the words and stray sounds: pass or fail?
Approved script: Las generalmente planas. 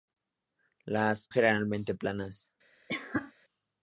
fail